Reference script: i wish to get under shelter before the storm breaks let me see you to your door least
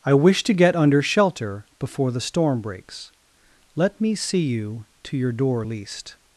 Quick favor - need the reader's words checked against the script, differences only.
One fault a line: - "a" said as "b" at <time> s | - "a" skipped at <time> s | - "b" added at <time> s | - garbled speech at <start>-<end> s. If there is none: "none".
none